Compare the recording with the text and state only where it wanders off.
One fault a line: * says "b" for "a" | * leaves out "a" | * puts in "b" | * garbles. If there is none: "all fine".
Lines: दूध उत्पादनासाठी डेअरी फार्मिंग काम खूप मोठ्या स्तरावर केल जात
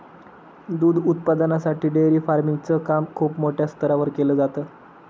* puts in "च"